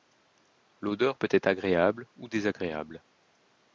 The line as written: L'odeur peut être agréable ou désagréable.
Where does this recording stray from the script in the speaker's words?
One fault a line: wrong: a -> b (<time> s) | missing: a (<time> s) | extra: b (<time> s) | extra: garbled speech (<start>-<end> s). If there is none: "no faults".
no faults